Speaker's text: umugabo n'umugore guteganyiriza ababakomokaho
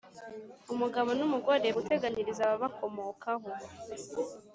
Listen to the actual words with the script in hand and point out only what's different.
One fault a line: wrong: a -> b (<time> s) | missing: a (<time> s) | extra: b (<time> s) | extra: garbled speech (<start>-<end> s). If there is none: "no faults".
no faults